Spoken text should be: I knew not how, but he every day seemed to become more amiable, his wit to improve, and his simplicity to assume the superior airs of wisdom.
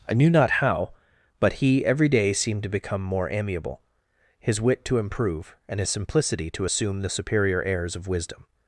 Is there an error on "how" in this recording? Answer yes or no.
no